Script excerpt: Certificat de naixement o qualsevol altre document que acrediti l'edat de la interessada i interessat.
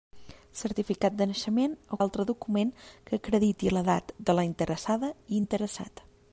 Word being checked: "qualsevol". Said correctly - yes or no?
no